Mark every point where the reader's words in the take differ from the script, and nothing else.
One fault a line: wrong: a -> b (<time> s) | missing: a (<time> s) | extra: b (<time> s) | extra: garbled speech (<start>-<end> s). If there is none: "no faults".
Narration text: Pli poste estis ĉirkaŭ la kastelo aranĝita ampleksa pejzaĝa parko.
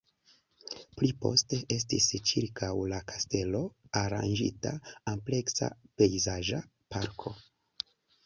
no faults